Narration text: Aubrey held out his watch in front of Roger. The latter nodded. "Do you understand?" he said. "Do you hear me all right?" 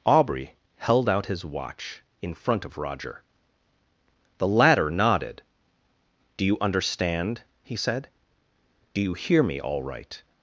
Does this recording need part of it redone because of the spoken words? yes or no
no